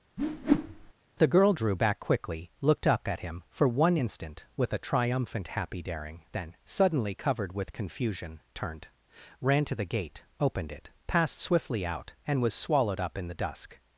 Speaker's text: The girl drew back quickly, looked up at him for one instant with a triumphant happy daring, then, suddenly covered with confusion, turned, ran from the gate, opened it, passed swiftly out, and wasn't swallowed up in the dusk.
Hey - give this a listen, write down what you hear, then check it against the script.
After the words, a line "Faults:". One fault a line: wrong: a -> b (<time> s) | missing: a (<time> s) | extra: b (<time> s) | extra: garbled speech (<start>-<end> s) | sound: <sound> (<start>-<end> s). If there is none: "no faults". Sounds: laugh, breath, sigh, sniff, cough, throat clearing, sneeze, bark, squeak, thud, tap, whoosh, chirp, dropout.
The girl drew back quickly, looked up at him for one instant with a triumphant happy daring, then, suddenly covered with confusion, turned, ran to the gate, opened it, passed swiftly out, and was swallowed up in the dusk.
Faults:
sound: whoosh (0.2-0.9 s)
wrong: from -> to (9.6 s)
wrong: wasn't -> was (12.4 s)